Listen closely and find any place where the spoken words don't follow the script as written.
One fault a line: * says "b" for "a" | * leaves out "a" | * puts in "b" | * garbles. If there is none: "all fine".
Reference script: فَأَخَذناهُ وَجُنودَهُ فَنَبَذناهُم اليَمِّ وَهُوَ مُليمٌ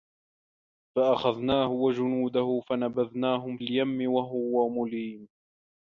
all fine